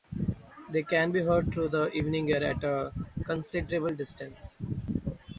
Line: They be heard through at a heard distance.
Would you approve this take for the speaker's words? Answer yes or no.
no